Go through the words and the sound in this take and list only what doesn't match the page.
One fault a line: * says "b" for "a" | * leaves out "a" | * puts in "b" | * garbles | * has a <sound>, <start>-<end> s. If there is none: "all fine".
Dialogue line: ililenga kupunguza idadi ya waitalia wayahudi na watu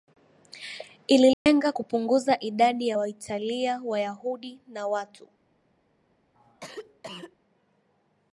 * has a dropout, 1.3-1.5 s
* has a cough, 6.3-7.4 s